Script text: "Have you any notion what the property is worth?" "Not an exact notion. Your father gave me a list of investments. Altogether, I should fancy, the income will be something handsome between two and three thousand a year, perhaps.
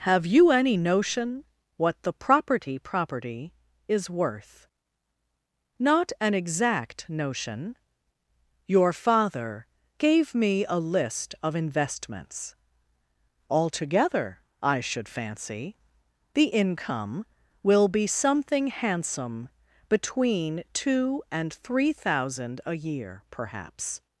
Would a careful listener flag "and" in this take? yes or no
no